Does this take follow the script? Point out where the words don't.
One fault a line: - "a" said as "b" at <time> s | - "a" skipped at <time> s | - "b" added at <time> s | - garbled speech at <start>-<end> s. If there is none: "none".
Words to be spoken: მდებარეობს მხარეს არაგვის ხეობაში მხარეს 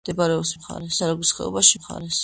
none